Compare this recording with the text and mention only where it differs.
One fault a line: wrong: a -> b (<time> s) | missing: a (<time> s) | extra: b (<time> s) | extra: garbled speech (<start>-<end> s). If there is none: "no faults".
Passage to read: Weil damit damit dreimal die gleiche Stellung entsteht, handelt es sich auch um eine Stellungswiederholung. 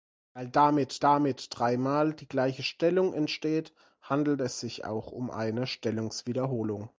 no faults